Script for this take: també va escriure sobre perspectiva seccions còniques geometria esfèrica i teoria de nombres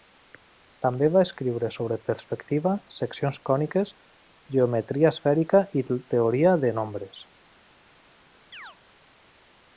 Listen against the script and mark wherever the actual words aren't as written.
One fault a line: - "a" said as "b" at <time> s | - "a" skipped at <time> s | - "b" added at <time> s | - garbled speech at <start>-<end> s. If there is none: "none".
none